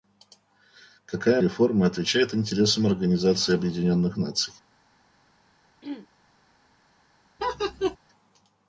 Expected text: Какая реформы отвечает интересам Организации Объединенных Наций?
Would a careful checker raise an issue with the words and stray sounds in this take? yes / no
yes